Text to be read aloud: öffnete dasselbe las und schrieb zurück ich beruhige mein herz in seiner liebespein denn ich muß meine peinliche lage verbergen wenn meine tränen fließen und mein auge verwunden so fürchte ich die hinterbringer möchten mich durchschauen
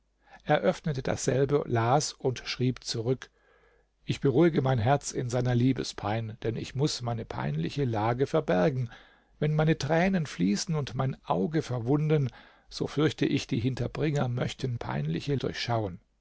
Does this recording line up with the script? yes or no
no